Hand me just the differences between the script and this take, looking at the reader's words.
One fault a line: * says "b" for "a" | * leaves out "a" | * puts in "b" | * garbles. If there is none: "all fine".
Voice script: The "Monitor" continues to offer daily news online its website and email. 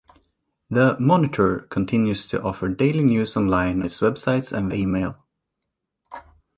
all fine